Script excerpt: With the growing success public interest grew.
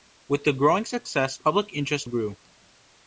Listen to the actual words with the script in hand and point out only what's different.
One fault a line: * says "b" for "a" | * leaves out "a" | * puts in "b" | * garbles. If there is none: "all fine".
all fine